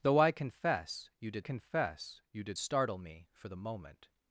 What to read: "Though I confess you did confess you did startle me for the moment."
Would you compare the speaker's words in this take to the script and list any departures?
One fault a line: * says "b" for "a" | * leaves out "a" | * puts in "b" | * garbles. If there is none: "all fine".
all fine